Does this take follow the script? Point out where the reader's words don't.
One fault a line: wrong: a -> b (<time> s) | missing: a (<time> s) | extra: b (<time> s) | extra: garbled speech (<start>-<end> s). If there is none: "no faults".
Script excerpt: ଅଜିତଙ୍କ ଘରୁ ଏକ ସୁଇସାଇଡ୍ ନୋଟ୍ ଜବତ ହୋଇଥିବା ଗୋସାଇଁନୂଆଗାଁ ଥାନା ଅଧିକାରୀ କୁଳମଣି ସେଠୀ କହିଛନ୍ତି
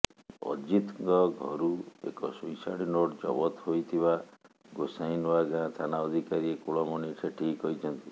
no faults